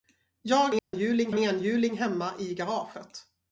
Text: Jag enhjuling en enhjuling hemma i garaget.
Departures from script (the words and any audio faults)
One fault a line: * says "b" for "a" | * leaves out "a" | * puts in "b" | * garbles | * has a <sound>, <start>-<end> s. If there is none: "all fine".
* has a dropout, 0.8-0.9 s